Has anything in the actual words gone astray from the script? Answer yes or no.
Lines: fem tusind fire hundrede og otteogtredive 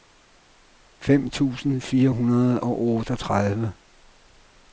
no